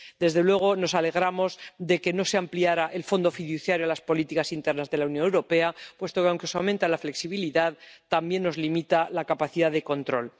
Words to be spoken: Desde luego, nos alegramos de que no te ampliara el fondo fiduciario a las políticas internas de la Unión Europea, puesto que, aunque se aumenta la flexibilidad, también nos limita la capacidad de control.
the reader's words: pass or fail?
fail